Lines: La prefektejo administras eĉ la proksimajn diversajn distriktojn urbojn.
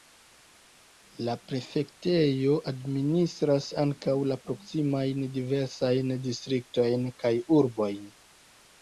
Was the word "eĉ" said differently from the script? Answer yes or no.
yes